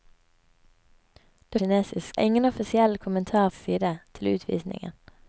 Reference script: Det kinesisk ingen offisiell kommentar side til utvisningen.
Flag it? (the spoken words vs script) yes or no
no